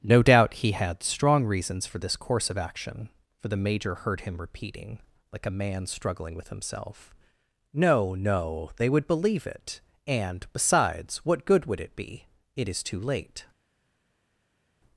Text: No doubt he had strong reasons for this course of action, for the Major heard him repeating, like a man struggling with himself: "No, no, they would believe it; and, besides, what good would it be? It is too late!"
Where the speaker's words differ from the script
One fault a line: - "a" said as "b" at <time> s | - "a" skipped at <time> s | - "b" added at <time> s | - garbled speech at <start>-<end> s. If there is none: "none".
none